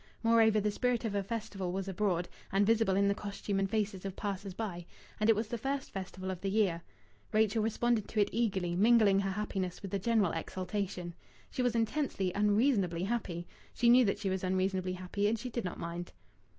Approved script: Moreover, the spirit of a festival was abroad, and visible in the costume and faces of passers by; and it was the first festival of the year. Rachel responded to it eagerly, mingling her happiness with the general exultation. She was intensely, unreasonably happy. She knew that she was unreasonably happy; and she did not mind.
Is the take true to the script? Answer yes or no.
yes